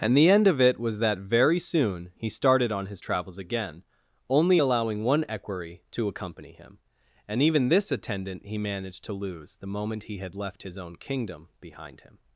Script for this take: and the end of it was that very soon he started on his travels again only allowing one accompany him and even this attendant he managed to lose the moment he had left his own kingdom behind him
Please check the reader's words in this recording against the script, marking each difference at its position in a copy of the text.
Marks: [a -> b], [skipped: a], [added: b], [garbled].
and the end of it was that very soon he started on his travels again only allowing one [added: equerry to] accompany him and even this attendant he managed to lose the moment he had left his own kingdom behind him